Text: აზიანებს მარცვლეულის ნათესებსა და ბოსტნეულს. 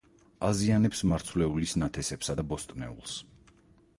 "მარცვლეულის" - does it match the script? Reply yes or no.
yes